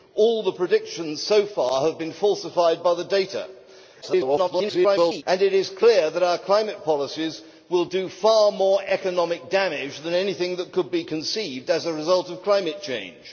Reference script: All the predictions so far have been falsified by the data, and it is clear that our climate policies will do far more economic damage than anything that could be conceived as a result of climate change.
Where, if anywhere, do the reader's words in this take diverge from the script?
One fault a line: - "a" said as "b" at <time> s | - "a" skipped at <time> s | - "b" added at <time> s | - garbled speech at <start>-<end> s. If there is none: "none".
- garbled speech at 4.0-5.2 s